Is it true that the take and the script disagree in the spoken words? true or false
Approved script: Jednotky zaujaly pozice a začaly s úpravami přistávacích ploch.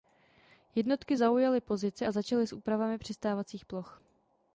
false